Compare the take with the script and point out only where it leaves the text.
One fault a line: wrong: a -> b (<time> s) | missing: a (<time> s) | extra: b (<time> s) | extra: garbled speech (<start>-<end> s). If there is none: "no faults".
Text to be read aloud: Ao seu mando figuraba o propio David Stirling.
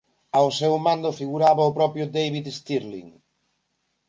no faults